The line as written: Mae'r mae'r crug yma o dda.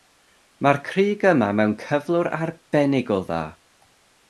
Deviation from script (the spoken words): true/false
true